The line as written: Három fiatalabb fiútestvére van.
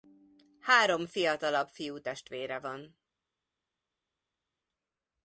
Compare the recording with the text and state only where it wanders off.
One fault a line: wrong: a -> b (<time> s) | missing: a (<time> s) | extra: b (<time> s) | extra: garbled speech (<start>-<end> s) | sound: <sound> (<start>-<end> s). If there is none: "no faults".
no faults